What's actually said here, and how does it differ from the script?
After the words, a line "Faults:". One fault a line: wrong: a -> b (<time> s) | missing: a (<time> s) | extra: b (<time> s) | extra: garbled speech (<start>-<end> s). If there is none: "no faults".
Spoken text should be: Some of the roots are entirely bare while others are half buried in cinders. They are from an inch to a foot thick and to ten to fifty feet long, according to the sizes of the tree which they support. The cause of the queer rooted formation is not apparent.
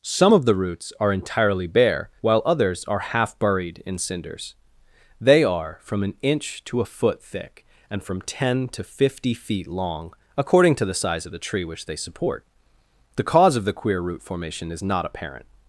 Some of the roots are entirely bare while others are half buried in cinders. They are from an inch to a foot thick and from ten to fifty feet long, according to the size of the tree which they support. The cause of the queer root formation is not apparent.
Faults:
wrong: to -> from (8.0 s)
wrong: sizes -> size (10.9 s)
wrong: rooted -> root (14.0 s)